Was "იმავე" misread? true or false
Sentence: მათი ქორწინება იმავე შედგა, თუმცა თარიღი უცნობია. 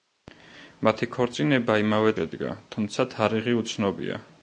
false